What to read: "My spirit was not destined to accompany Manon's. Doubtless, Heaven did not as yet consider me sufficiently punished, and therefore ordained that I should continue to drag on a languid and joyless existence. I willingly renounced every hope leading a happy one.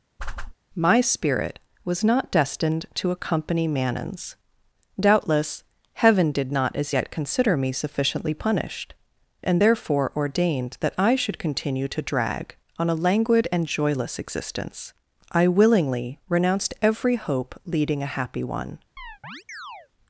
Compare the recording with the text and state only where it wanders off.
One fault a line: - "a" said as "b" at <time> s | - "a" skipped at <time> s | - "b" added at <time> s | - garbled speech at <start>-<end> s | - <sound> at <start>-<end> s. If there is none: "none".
- whoosh at 0.2-0.5 s
- chirp at 19.0-19.9 s